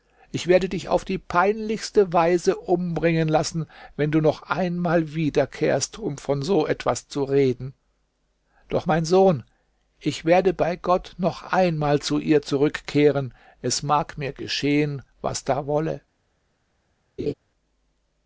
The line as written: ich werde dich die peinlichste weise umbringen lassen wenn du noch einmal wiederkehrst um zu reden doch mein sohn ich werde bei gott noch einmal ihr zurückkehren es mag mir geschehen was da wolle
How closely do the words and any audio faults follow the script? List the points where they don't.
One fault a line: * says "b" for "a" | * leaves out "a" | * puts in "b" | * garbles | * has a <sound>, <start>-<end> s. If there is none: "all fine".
* puts in "auf"
* puts in "von so etwas"
* puts in "zu"
* has a laugh, 17.2-17.3 s